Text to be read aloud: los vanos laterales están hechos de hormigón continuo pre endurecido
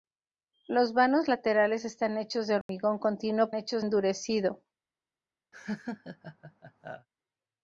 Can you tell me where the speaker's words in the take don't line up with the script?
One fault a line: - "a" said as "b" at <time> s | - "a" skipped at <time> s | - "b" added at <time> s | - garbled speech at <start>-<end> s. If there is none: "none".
- "pre" said as "hechos" at 3.5 s